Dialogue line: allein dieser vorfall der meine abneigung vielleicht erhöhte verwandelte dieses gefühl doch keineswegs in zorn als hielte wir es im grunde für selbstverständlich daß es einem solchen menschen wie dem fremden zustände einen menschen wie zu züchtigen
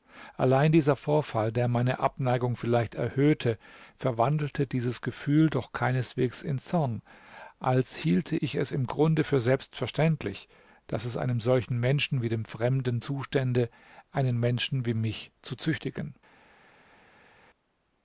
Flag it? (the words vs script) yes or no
yes